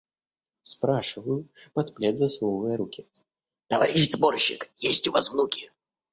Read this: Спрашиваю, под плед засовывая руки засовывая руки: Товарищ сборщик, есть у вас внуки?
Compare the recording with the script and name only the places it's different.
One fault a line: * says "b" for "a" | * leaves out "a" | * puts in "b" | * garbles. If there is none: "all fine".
* leaves out "засовывая руки"